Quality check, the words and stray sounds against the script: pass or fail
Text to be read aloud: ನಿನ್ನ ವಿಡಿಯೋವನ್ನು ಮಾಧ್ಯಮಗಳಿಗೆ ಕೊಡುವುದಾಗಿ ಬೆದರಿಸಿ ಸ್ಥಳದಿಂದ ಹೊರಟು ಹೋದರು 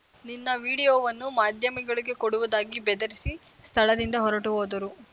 pass